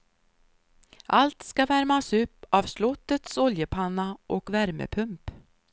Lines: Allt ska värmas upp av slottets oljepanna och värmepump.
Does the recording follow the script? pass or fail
pass